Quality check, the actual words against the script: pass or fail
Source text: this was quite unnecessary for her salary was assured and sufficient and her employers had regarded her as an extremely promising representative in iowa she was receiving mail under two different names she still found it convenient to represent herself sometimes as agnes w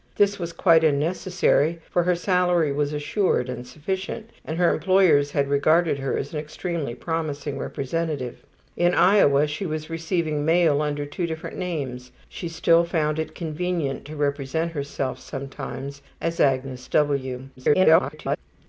fail